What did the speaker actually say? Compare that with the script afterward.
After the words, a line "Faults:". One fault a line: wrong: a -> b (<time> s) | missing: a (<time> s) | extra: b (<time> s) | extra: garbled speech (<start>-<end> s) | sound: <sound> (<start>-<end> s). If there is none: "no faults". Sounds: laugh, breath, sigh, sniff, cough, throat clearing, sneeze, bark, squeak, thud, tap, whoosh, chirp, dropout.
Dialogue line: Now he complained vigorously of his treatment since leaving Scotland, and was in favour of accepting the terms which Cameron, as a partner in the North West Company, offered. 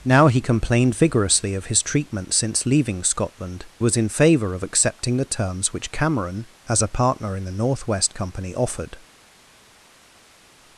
Now he complained vigorously of his treatment since leaving Scotland, was in favour of accepting the terms which Cameron, as a partner in the North West Company, offered.
Faults:
missing: and (3.7 s)